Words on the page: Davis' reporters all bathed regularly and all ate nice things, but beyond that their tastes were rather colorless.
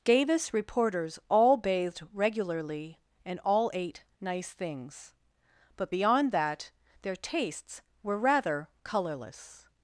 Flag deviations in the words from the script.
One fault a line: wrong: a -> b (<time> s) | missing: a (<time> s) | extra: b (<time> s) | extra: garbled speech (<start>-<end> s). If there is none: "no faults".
no faults